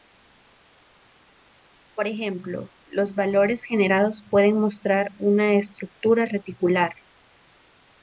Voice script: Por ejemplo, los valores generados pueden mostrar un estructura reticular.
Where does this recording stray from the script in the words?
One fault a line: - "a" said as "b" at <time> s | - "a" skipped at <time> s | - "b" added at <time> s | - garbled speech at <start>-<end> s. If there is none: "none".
- "un" said as "una" at 5.2 s